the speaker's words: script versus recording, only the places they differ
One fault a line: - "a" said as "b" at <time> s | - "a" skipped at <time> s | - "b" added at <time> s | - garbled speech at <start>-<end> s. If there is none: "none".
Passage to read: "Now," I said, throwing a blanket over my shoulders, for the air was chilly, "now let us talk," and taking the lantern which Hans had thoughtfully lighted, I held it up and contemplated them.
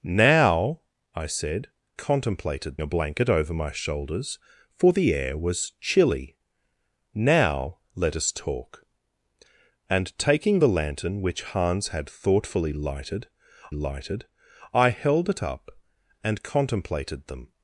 - "throwing" said as "contemplated" at 2.0 s
- "lighted" added at 13.7 s